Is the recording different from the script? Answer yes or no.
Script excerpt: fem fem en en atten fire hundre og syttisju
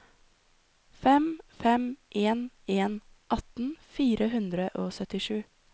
no